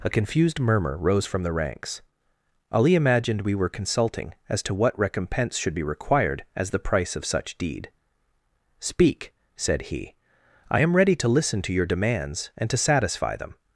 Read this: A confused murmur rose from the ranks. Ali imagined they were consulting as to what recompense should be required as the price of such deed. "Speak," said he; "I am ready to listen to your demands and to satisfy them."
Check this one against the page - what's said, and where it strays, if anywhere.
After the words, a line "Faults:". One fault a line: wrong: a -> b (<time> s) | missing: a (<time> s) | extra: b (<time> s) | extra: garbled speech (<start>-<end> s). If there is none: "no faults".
A confused murmur rose from the ranks. Ali imagined we were consulting as to what recompense should be required as the price of such deed. "Speak," said he; "I am ready to listen to your demands and to satisfy them."
Faults:
wrong: they -> we (3.4 s)